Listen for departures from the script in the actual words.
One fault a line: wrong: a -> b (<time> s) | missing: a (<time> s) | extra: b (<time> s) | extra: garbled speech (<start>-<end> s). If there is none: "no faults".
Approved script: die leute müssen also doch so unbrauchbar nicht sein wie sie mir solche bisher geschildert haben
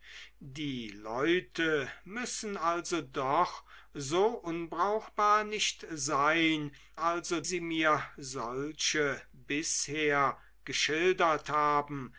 wrong: wie -> also (7.0 s)